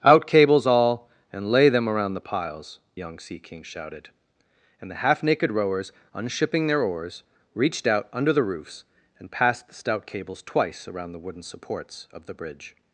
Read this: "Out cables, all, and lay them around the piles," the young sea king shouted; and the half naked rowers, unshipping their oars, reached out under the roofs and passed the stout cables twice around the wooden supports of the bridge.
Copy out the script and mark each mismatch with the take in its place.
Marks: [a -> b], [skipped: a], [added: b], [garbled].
"Out cables, all, and lay them around the piles," [skipped: the] young sea king shouted; and the half naked rowers, unshipping their oars, reached out under the roofs and passed the stout cables twice around the wooden supports of the bridge.